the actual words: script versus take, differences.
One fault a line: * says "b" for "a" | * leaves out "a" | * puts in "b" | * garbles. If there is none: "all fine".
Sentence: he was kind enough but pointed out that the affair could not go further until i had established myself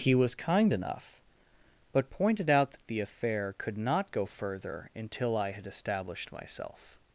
all fine